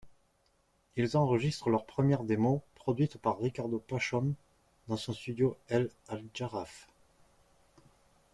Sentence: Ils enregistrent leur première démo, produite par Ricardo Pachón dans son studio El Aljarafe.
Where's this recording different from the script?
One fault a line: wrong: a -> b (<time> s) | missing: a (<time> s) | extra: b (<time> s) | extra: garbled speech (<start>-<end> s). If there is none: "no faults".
no faults